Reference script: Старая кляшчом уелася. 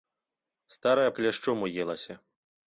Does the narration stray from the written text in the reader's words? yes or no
no